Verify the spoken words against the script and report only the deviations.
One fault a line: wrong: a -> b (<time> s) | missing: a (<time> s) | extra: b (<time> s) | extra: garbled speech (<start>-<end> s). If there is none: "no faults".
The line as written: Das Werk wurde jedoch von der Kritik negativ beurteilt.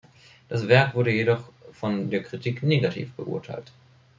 no faults